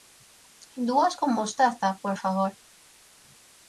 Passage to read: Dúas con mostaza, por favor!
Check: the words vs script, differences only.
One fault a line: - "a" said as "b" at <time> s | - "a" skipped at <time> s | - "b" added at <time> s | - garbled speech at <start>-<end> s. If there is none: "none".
none